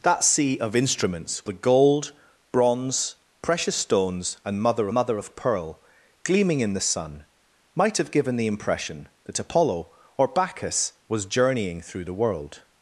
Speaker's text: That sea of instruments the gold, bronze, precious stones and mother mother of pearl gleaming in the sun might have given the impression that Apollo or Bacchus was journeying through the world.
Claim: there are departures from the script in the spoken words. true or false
false